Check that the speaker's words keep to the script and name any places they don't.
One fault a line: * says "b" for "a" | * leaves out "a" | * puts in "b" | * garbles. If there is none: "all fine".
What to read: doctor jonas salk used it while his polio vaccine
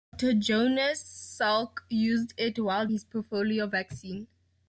all fine